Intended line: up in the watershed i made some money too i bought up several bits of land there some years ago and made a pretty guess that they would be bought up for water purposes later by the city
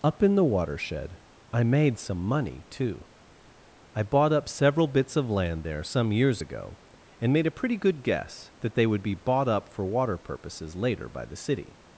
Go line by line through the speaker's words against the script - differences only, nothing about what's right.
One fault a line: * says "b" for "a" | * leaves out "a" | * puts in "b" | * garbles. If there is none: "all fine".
* puts in "good"